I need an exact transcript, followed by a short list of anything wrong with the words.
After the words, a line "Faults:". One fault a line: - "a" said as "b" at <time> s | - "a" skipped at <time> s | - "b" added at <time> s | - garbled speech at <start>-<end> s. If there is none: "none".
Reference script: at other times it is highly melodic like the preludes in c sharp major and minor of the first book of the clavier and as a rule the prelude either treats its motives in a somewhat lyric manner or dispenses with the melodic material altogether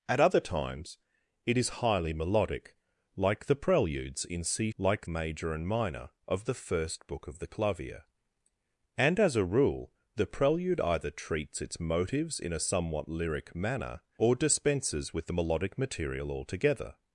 at other times it is highly melodic like the preludes in c like major and minor of the first book of the clavier and as a rule the prelude either treats its motives in a somewhat lyric manner or dispenses with the melodic material altogether
Faults:
- "sharp" said as "like" at 4.8 s